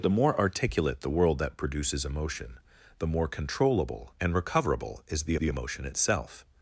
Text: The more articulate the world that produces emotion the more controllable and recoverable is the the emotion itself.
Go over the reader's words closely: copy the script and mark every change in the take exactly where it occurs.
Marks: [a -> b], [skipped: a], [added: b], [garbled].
The more articulate the world that produces emotion the more controllable and recoverable is the the emotion itself.